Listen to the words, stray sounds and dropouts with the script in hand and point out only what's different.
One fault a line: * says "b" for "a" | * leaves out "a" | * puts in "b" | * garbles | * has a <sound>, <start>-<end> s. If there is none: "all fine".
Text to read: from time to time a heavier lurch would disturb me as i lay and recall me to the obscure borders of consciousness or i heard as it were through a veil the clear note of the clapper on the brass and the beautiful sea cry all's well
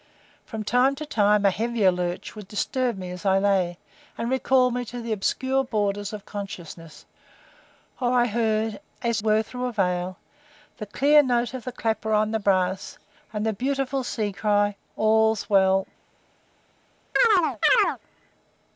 * leaves out "it"
* has a chirp, 17.2-18.0 s